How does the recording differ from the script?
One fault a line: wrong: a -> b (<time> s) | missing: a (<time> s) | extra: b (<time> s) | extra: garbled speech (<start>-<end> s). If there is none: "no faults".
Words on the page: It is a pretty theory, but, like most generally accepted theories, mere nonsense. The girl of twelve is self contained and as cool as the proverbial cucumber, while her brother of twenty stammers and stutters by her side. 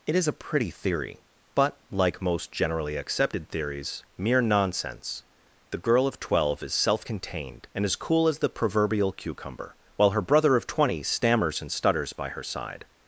no faults